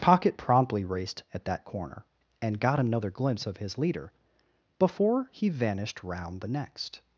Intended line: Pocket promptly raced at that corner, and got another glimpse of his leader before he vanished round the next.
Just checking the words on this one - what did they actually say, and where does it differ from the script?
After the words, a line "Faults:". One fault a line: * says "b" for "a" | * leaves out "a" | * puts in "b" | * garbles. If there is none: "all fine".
Pocket promptly raced at that corner, and got another glimpse of his leader before he vanished round the next.
Faults:
all fine